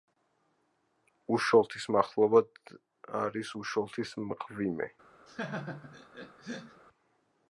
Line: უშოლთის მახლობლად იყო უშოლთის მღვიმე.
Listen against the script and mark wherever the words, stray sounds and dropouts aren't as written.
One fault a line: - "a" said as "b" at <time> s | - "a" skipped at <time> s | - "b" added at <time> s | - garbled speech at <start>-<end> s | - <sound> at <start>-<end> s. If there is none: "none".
- "იყო" said as "არის" at 3.2 s
- laugh at 5.3-6.8 s